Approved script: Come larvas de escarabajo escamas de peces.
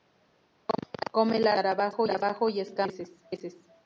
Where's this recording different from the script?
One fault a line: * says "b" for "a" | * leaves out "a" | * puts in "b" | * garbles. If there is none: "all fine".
* puts in "y"